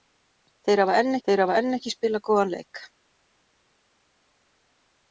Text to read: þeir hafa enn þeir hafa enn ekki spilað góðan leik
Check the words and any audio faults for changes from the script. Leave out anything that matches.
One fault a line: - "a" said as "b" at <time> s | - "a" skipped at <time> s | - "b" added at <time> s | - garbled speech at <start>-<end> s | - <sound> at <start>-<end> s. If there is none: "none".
none